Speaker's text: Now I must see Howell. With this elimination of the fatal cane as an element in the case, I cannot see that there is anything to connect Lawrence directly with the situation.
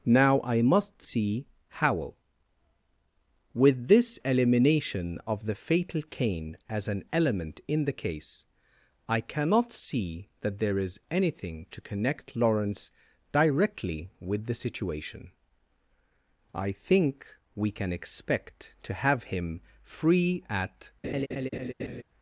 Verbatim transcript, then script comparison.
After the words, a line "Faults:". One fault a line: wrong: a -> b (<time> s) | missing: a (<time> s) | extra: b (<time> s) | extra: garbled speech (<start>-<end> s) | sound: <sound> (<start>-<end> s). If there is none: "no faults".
Now I must see Howell. With this elimination of the fatal cane as an element in the case, I cannot see that there is anything to connect Lawrence directly with the situation. I think we can expect to have him free at
Faults:
extra: I think we can expect to have him free at (16.5 s)
sound: laugh (21.0-22.0 s)